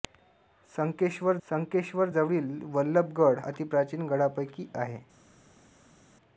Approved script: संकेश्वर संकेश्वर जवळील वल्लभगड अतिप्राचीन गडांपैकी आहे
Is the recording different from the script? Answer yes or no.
no